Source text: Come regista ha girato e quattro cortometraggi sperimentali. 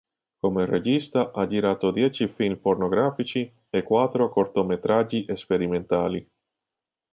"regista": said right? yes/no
yes